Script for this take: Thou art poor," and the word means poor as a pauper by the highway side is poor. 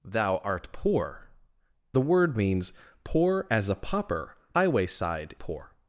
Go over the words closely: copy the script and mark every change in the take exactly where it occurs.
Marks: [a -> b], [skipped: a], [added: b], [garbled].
Thou art poor," [skipped: and] the word means poor as a pauper [skipped: by the] highway side [skipped: is] poor.